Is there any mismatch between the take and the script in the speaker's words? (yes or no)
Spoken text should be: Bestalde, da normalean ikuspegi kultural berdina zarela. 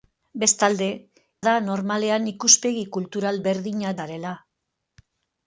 no